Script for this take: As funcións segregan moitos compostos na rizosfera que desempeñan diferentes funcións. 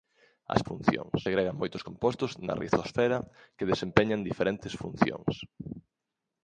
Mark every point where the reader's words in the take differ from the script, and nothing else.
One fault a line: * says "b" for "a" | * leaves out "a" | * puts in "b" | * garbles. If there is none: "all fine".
all fine